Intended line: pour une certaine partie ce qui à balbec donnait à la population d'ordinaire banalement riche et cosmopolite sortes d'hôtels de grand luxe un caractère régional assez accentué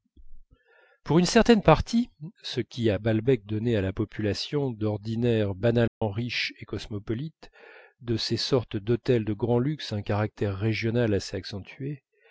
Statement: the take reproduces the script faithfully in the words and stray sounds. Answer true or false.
false